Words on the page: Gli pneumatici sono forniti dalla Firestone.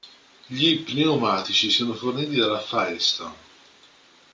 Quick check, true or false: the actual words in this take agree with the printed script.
true